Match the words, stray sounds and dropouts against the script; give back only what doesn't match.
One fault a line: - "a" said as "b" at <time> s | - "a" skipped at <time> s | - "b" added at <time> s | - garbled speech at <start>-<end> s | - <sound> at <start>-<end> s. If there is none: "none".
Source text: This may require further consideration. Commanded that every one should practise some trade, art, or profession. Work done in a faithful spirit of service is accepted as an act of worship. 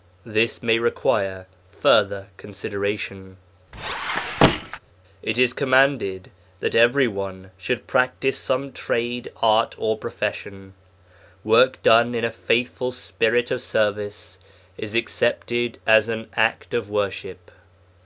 - squeak at 3.7-4.8 s
- "It is" added at 5.2 s